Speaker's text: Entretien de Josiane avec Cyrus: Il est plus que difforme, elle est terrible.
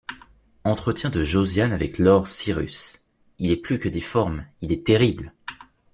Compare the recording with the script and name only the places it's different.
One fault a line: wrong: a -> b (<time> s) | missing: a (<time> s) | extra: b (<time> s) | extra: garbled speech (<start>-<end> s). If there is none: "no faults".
extra: lord (2.0 s)
wrong: elle -> il (4.6 s)